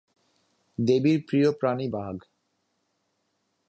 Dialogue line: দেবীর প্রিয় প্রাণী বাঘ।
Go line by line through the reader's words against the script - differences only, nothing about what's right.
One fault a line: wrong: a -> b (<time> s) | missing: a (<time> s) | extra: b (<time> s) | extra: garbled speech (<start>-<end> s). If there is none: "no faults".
no faults